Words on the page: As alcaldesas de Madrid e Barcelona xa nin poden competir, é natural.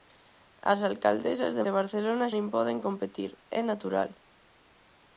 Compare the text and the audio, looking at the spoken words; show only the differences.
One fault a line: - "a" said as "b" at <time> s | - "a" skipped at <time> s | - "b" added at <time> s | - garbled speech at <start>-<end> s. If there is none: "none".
- "Madrid" skipped at 1.6 s
- "xa" skipped at 2.3 s